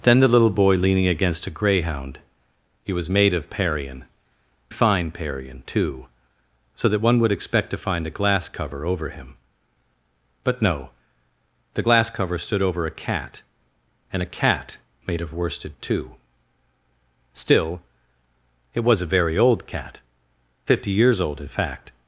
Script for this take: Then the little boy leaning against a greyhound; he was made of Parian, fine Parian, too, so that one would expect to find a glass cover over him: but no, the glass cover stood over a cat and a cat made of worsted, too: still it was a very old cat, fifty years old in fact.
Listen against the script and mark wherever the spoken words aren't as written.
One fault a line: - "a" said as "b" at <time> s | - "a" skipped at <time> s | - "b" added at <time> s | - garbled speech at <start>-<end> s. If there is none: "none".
none